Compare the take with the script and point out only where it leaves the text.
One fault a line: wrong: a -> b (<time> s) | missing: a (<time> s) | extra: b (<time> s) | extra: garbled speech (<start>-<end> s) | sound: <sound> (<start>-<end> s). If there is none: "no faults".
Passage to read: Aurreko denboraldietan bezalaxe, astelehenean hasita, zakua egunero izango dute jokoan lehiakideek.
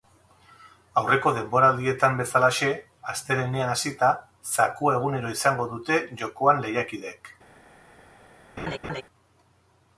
sound: laugh (8.6-9.0 s)